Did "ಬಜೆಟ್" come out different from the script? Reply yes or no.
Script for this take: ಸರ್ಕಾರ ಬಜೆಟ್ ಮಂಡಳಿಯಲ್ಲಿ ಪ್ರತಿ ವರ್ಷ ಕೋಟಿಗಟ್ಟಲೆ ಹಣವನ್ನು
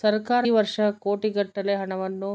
yes